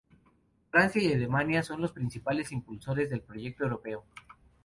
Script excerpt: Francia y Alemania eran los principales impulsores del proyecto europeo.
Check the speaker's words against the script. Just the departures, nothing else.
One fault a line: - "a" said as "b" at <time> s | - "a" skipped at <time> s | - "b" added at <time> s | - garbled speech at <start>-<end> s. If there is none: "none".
- "eran" said as "son" at 1.6 s